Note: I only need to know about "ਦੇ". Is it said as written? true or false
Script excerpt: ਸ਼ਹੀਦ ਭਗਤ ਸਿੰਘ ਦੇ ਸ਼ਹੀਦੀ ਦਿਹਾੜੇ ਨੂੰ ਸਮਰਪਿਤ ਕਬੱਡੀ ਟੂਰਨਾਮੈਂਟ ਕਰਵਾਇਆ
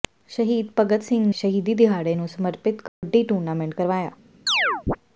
false